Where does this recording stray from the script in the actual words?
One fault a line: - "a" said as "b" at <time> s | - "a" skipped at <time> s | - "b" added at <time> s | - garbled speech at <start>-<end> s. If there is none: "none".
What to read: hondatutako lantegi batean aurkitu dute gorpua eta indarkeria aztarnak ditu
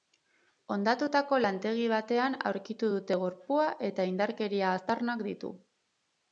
none